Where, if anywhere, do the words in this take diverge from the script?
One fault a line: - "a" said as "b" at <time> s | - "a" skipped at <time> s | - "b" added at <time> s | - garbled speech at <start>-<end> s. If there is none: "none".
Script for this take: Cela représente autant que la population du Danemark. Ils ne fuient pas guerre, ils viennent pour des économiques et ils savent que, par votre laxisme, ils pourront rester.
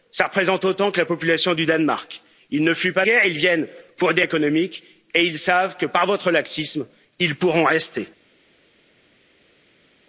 none